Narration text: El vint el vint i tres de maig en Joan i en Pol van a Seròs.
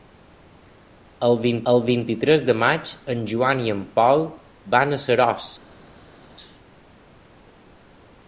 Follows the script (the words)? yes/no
yes